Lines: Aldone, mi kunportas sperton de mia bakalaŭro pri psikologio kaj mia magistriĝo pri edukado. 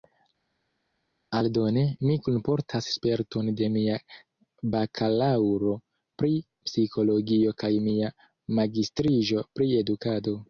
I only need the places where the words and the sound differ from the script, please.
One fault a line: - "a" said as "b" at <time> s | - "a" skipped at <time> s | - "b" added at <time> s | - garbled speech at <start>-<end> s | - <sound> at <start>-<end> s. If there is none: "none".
none